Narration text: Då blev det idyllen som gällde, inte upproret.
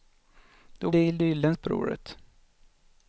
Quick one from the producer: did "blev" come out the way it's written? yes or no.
no